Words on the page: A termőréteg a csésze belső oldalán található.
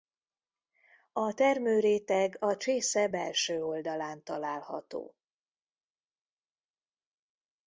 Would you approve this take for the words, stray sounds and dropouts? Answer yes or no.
yes